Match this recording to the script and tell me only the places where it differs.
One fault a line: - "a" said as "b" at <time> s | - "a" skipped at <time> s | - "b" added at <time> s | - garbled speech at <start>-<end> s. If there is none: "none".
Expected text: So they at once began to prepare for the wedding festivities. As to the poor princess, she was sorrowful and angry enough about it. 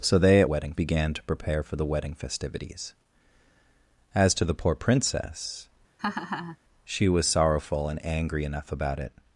- "once" said as "wedding" at 0.4 s